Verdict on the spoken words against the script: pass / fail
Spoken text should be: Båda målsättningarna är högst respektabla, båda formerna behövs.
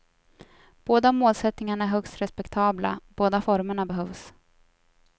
pass